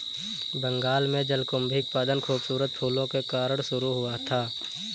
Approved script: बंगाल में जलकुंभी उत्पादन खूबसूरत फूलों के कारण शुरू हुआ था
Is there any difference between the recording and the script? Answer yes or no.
no